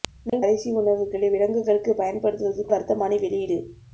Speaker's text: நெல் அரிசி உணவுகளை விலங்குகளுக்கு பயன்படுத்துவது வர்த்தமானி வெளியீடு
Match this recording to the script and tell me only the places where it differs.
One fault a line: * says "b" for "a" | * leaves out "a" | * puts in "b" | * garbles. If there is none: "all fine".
all fine